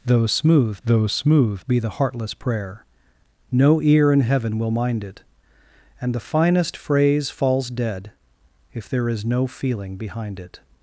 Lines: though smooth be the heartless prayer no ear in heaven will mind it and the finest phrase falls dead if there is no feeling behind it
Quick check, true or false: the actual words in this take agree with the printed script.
false